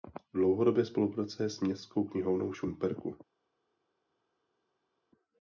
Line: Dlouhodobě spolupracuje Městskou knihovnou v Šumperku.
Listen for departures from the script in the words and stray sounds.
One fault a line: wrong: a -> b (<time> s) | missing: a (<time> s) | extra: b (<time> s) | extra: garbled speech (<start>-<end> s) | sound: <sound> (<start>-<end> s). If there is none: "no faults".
extra: s (1.5 s)